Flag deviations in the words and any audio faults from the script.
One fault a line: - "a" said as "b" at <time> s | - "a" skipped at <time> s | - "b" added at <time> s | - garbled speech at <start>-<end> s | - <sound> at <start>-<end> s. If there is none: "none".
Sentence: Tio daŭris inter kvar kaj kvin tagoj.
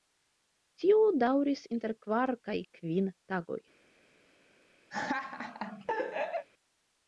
- laugh at 4.9-6.5 s